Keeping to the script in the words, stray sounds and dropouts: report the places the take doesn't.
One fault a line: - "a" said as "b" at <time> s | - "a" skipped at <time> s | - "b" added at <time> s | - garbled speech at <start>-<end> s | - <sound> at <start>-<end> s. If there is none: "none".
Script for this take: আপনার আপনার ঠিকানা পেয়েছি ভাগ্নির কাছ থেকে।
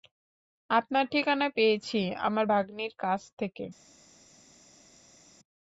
- "আপনার" skipped at 1.1 s
- "আমার" added at 2.2 s